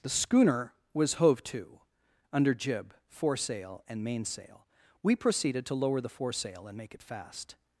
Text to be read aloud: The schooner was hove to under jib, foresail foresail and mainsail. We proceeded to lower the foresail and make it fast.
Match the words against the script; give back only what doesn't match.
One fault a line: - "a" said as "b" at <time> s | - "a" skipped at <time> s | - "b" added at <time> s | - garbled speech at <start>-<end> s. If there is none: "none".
- "foresail" skipped at 3.8 s